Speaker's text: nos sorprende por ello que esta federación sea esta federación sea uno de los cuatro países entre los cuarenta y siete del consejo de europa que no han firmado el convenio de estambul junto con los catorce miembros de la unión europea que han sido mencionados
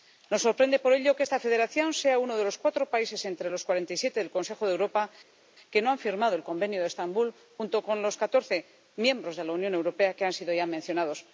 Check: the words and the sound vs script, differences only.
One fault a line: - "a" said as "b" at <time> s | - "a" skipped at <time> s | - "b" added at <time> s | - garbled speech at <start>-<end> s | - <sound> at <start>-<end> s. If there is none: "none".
- "esta federación sea" skipped at 2.2 s
- "ya" added at 10.5 s